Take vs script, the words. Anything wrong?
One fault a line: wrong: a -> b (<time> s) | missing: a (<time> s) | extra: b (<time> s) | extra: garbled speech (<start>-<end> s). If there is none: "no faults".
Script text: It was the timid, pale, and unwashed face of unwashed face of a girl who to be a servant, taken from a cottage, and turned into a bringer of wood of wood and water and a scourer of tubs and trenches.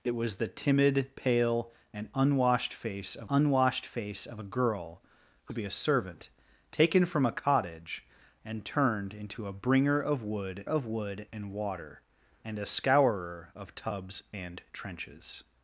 no faults